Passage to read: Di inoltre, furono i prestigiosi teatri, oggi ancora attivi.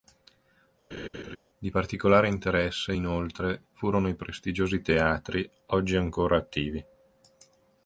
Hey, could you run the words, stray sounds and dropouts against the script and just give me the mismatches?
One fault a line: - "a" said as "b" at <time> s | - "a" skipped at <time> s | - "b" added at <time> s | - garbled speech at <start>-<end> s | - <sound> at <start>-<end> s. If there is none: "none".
- laugh at 0.9-1.4 s
- "particolare interesse" added at 1.7 s